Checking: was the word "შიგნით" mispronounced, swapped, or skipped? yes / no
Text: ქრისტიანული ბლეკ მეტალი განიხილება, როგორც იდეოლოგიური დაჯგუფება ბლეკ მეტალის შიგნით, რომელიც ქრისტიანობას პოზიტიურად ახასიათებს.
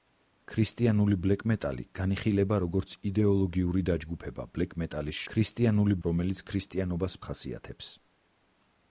yes